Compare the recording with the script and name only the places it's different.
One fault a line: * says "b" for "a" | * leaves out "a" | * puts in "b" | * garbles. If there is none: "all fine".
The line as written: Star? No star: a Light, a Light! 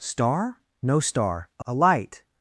* leaves out "Light"